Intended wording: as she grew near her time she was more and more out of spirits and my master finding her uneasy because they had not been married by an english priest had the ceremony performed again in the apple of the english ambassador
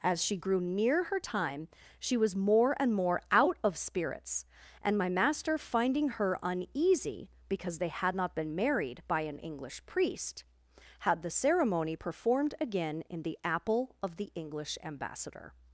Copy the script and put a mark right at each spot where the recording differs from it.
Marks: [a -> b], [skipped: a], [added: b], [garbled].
as she grew near her time she was more and more out of spirits and my master finding her uneasy because they had not been married by an english priest had the ceremony performed again in the apple of the english ambassador